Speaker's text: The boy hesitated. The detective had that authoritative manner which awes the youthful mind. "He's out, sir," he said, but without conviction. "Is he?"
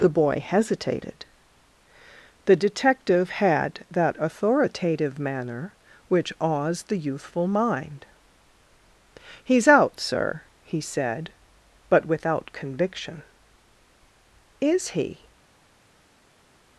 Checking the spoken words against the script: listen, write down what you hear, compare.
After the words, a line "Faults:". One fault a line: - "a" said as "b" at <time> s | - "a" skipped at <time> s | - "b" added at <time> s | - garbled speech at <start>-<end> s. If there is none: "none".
The boy hesitated. The detective had that authoritative manner which awes the youthful mind. "He's out, sir," he said, but without conviction. "Is he?"
Faults:
none